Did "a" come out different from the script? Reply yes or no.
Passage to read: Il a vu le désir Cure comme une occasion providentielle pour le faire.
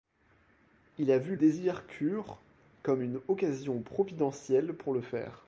no